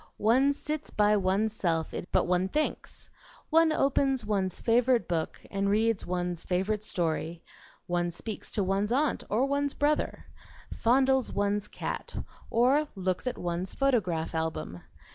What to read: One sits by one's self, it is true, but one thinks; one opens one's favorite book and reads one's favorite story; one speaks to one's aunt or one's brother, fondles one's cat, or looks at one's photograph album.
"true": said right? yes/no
no